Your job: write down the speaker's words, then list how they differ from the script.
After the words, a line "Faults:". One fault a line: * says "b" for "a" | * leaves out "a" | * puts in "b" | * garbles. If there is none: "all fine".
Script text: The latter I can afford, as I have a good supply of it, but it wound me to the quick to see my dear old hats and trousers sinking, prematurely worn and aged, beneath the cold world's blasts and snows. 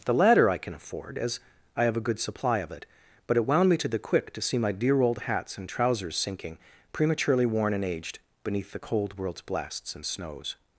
The latter I can afford, as I have a good supply of it, but it wound me to the quick to see my dear old hats and trousers sinking, prematurely worn and aged, beneath the cold world's blasts and snows.
Faults:
all fine